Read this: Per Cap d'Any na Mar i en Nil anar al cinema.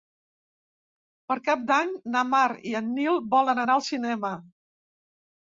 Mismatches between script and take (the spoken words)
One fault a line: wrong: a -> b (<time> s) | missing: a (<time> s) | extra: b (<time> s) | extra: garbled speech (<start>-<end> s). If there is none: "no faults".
extra: volen (3.4 s)